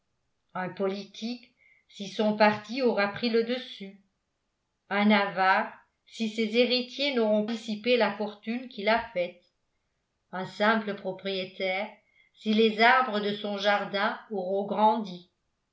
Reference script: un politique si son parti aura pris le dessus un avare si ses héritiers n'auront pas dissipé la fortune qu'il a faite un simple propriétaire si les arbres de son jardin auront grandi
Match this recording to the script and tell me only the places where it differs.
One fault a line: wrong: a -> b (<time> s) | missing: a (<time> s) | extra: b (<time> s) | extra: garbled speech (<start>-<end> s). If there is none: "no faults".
missing: pas (7.5 s)